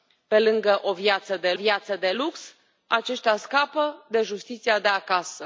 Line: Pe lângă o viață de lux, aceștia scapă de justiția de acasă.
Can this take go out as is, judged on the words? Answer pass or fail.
fail